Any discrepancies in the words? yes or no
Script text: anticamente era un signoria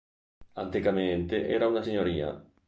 yes